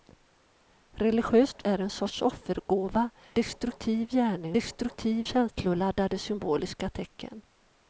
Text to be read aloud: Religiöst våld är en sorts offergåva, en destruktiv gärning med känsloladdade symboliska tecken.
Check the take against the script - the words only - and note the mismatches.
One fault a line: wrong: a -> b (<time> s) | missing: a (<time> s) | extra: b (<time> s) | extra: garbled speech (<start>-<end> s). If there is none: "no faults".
missing: våld (1.6 s)
missing: en (3.1 s)
wrong: med -> destruktiv (4.5 s)